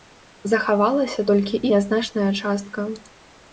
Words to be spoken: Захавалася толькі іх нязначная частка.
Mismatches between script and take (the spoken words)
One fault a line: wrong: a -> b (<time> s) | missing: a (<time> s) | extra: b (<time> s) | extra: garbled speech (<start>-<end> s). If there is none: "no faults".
missing: іх (1.6 s)